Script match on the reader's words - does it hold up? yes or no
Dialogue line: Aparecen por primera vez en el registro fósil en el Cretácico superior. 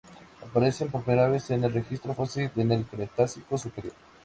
yes